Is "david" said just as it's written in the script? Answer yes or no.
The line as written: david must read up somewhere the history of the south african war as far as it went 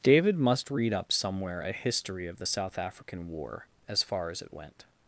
yes